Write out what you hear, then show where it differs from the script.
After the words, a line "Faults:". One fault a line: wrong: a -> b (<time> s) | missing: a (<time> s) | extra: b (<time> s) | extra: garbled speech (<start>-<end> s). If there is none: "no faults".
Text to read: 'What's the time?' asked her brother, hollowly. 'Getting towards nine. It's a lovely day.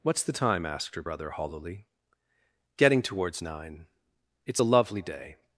'What's the time?' asked her brother, hollowly. 'Getting towards nine. It's a lovely day.
Faults:
no faults